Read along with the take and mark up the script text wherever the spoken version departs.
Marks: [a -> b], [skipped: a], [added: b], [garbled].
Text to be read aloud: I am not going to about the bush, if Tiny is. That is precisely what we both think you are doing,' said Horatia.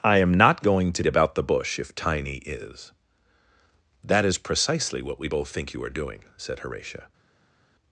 I am not going to about the bush, if Tiny is. That is precisely what we both think you are doing,' said Horatia.